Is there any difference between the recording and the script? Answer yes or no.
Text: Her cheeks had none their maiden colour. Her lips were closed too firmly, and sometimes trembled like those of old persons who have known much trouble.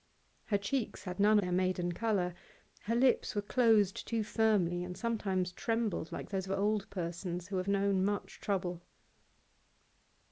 no